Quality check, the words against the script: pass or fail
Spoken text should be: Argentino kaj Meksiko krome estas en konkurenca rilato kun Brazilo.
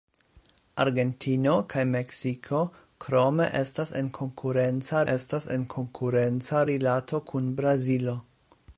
fail